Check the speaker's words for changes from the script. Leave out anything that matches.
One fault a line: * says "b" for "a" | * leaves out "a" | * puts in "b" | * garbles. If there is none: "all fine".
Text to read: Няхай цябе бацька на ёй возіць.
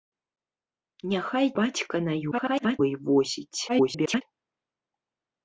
* leaves out "цябе"
* garbles
* garbles